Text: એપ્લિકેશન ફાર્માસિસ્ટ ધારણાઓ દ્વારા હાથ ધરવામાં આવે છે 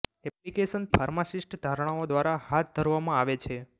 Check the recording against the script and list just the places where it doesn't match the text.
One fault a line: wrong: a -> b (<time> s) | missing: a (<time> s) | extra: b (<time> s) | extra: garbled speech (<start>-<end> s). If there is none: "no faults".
no faults